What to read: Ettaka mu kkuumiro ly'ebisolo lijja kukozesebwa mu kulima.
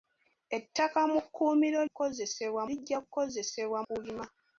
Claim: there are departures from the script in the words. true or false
true